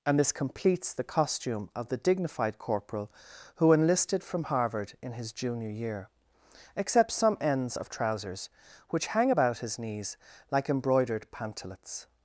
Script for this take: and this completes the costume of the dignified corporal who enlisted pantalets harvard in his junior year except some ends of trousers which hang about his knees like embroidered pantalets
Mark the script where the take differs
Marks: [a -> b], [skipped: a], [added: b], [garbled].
and this completes the costume of the dignified corporal who enlisted [pantalets -> from] harvard in his junior year except some ends of trousers which hang about his knees like embroidered pantalets